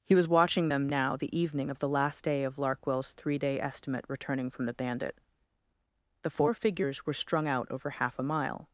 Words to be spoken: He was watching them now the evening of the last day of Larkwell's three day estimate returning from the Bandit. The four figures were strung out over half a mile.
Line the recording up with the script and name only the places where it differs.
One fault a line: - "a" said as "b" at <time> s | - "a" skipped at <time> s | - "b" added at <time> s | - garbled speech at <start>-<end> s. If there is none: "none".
none